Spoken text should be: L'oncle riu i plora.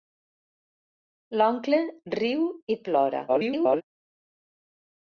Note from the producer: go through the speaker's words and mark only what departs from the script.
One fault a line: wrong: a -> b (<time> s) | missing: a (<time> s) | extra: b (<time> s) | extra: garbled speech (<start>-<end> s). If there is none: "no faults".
extra: garbled speech (3.3-3.8 s)